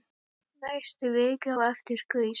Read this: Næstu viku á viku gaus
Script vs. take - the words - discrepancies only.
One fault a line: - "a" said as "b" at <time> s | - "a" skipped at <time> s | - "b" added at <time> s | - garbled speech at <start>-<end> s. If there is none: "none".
- "viku" said as "eftir" at 1.7 s